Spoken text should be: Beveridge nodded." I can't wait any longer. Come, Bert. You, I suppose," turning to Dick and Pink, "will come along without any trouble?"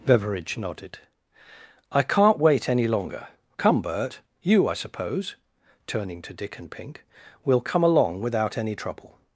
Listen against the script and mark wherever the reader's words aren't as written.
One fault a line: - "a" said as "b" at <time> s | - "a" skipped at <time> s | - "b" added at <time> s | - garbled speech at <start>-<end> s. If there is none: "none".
none